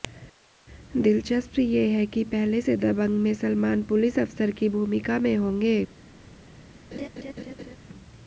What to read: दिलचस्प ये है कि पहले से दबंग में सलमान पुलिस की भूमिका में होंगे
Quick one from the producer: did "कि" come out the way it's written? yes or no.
yes